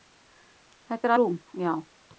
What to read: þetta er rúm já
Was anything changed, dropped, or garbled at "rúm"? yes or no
no